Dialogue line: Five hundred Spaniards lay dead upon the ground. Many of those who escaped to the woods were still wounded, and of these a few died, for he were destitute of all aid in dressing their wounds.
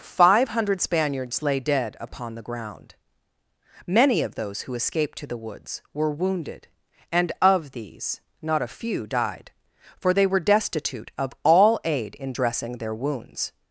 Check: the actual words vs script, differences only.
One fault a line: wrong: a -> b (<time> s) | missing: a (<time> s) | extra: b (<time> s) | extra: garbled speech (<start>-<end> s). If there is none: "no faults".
missing: still (6.1 s)
extra: not (8.4 s)
wrong: he -> they (10.1 s)